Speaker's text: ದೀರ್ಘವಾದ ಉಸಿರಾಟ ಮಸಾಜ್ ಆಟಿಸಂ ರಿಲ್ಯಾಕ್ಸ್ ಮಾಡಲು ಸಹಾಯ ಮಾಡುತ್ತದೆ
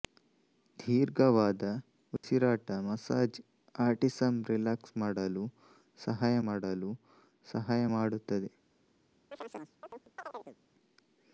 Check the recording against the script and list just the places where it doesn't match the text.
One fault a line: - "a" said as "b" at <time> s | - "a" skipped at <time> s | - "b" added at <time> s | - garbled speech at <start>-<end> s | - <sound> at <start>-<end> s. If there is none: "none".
- dropout at 2.2-2.2 s
- "ಮಾಡಲು ಸಹಾಯ" added at 6.4 s
- chirp at 9.3-10.6 s